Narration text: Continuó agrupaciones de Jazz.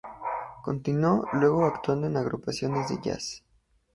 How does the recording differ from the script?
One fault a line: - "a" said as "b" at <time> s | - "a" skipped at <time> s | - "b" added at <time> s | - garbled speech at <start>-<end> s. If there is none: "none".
- "luego actuando en" added at 1.3 s